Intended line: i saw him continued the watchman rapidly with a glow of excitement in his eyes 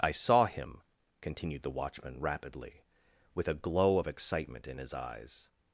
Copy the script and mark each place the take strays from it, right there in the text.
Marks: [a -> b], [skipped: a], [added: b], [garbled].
i saw him continued the watchman rapidly with a glow of excitement in his eyes